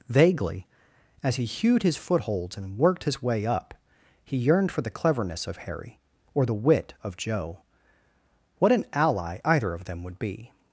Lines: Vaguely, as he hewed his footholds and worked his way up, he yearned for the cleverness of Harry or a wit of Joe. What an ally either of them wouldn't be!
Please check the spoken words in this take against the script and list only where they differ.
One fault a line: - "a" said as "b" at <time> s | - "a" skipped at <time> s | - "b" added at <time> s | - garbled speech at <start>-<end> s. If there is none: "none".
- "a" said as "the" at 6.4 s
- "wouldn't" said as "would" at 10.0 s